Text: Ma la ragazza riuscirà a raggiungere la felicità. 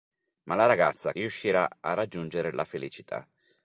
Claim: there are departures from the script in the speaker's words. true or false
false